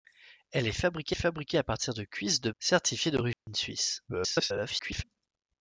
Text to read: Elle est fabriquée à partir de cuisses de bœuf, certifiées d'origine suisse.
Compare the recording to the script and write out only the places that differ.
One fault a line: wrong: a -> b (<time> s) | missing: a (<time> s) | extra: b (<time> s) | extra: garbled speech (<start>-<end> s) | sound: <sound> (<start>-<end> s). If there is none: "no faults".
extra: fabriquée (1.1 s)
missing: bœuf (2.5 s)
sound: dropout (3.3-3.5 s)
extra: garbled speech (4.1-5.0 s)